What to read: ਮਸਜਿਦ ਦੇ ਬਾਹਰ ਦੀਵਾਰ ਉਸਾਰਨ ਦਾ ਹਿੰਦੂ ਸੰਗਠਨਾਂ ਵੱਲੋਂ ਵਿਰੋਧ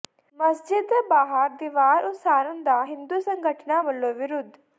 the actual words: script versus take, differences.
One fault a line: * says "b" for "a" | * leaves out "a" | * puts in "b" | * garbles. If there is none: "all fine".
all fine